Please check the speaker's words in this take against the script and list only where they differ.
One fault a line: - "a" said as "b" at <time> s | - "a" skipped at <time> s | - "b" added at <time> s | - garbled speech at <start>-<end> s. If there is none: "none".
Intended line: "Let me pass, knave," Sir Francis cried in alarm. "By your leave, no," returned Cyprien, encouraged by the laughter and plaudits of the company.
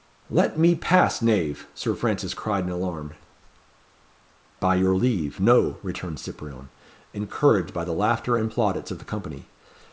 none